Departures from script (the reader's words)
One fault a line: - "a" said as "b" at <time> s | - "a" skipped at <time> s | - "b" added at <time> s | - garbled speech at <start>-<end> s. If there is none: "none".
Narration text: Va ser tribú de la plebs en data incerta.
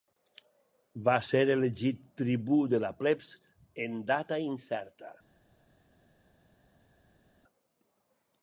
- "elegit" added at 1.6 s